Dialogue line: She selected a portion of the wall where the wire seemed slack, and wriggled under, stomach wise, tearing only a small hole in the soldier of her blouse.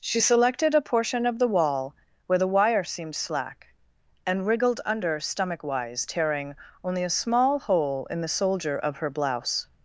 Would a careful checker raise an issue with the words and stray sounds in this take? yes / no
no